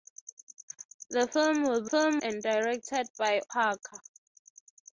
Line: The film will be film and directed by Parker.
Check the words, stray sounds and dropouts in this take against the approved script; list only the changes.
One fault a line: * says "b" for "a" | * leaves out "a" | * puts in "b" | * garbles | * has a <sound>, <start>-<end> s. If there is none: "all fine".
all fine